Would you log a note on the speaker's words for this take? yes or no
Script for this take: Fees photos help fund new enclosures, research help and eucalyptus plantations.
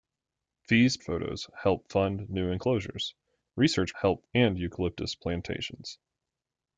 no